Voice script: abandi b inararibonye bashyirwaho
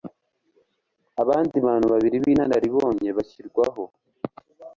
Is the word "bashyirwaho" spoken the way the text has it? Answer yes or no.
yes